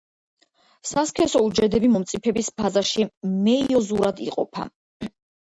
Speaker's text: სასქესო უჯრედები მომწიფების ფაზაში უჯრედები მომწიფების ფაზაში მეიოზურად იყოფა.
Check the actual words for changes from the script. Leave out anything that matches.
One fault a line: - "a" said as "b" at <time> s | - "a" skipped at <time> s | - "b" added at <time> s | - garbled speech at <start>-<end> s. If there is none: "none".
- "უჯრედები მომწიფების ფაზაში" skipped at 3.1 s